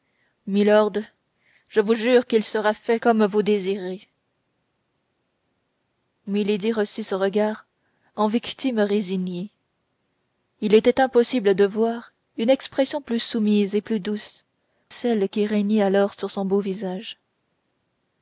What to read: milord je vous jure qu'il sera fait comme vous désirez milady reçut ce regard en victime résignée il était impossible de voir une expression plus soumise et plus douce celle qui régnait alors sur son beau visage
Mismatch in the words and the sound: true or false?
false